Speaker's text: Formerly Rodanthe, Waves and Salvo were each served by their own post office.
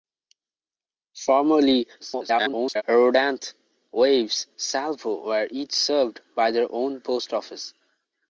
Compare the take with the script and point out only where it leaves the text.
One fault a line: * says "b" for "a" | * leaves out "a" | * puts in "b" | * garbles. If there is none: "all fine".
* garbles
* leaves out "and"